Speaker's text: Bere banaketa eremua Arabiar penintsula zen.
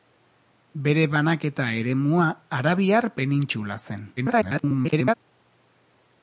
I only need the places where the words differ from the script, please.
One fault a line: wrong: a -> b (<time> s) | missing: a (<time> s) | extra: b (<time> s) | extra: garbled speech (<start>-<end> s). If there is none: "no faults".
extra: garbled speech (4.2-5.1 s)